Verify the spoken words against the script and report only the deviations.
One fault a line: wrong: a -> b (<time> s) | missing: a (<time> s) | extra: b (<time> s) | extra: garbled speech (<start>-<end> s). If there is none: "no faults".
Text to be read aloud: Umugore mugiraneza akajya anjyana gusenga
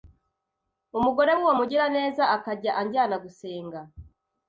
extra: w'uwo (1.3 s)